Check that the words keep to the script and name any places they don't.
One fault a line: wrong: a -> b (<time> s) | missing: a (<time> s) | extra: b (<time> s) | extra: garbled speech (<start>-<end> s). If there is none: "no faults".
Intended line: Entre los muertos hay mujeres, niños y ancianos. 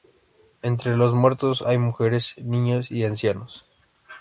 no faults